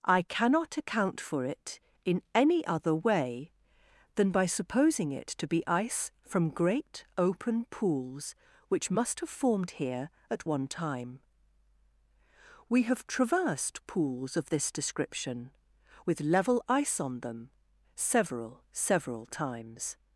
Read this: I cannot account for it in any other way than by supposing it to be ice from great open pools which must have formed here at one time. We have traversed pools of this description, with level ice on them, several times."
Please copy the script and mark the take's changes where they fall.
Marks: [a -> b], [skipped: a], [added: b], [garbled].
I cannot account for it in any other way than by supposing it to be ice from great open pools which must have formed here at one time. We have traversed pools of this description, with level ice on them, several [added: several] times."